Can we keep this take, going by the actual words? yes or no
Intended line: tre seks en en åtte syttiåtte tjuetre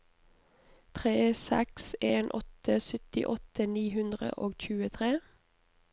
no